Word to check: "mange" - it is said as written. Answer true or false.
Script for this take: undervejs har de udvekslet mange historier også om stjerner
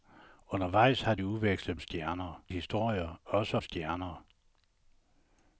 false